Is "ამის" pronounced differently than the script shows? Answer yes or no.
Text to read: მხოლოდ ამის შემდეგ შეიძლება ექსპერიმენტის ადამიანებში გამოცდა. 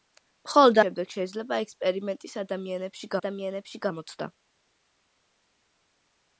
yes